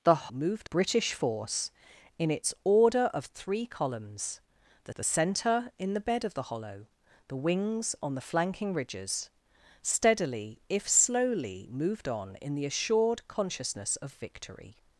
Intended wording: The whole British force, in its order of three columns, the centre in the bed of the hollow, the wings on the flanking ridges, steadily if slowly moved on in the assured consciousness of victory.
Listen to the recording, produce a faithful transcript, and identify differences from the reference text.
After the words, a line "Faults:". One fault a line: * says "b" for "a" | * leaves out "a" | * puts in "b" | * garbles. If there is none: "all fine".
The moved British force, in its order of three columns, the the centre in the bed of the hollow, the wings on the flanking ridges, steadily if slowly moved on in the assured consciousness of victory.
Faults:
* says "moved" for "whole"
* puts in "the"